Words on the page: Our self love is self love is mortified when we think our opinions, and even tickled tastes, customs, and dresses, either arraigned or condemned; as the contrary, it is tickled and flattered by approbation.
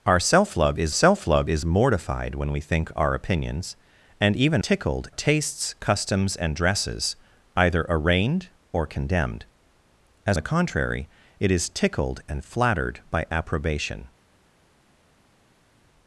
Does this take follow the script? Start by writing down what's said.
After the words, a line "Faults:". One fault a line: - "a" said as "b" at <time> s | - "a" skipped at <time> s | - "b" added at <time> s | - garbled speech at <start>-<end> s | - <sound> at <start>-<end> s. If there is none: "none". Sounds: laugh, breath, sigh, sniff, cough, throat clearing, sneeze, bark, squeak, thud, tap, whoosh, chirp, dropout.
Our self love is self love is mortified when we think our opinions, and even tickled tastes, customs, and dresses, either arraigned or condemned; as the contrary, it is tickled and flattered by approbation.
Faults:
none